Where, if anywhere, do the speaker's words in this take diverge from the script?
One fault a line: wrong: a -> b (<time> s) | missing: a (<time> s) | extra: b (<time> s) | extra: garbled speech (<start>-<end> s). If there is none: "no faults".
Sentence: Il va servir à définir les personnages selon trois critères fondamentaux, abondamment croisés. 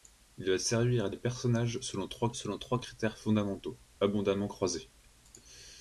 missing: définir (1.1 s)
extra: selon trois (2.3 s)